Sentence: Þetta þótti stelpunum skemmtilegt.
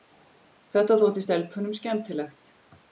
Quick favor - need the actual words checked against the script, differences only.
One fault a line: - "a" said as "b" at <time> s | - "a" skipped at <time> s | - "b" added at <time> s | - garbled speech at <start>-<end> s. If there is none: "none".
none